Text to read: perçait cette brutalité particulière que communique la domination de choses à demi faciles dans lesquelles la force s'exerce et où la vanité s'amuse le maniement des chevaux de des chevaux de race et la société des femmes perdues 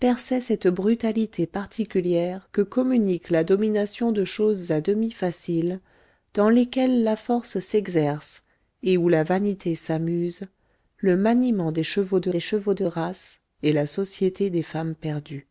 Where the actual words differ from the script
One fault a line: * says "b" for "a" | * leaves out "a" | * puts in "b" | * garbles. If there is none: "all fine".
all fine